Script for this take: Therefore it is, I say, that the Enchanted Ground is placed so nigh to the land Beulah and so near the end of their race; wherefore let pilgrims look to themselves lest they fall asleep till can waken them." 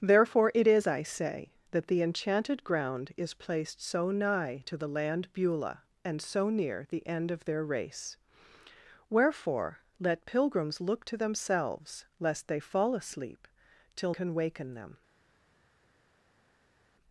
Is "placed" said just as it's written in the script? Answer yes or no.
yes